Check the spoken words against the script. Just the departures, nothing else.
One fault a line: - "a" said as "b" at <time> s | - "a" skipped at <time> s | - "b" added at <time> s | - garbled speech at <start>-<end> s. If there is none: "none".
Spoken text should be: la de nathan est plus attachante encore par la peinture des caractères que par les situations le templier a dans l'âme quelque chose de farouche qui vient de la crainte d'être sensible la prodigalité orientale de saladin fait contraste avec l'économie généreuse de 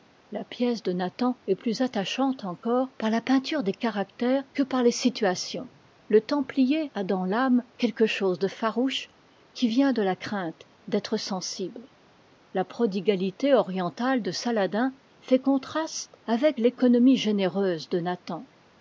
- "pièce" added at 0.4 s